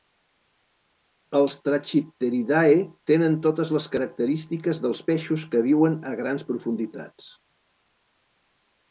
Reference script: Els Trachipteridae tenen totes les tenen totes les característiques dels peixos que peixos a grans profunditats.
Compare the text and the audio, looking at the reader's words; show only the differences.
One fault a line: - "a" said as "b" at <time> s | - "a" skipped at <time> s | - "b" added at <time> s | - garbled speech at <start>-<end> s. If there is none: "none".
- "tenen totes les" skipped at 3.9 s
- "peixos" said as "viuen" at 5.7 s